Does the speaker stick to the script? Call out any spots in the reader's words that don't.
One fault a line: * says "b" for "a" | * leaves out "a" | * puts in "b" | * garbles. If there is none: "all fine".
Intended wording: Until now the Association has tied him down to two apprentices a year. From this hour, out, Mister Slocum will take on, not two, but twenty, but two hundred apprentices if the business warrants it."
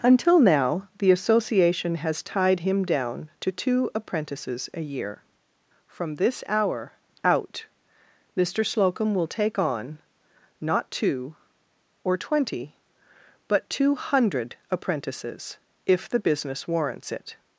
* says "or" for "but"